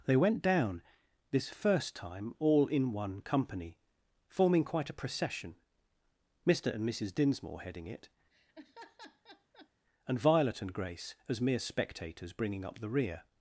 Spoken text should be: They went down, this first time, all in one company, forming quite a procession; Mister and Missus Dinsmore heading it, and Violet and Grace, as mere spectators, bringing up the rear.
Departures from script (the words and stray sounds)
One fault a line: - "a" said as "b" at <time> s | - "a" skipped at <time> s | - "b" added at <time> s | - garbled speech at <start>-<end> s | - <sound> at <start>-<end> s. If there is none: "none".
- laugh at 8.3-9.7 s